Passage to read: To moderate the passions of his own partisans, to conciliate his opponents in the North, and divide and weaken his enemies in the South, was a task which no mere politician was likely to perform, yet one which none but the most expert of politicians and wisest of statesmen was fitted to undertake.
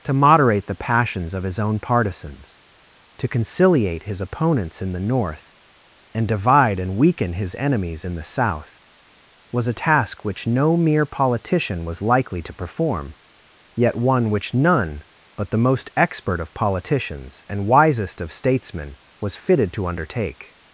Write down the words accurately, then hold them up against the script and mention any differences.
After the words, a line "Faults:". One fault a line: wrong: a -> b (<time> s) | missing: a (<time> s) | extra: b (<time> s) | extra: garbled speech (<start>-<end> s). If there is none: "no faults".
To moderate the passions of his own partisans, to conciliate his opponents in the North, and divide and weaken his enemies in the South, was a task which no mere politician was likely to perform, yet one which none but the most expert of politicians and wisest of statesmen was fitted to undertake.
Faults:
no faults